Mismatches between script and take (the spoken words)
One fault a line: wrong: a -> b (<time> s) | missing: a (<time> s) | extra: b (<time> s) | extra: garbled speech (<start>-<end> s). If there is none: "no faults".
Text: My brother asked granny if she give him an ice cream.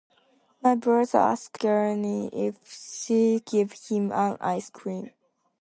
no faults